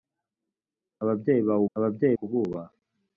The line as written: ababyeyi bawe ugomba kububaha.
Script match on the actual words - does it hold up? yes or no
no